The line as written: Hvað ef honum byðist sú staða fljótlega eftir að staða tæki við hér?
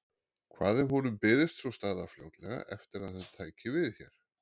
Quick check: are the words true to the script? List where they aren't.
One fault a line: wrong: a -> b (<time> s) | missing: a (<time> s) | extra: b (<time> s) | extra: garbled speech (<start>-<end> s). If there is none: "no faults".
wrong: staða -> hann (3.2 s)